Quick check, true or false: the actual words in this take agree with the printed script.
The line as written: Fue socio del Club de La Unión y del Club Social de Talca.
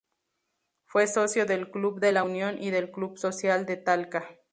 true